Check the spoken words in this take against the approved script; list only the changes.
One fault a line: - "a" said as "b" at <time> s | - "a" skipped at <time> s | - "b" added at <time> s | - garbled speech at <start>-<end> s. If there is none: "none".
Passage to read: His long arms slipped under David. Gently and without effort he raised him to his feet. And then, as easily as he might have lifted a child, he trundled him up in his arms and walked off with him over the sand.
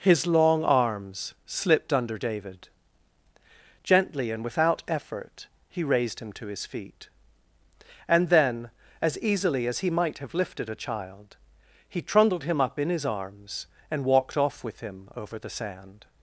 none